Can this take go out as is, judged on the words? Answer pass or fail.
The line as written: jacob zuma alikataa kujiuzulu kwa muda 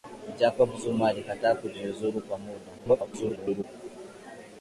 fail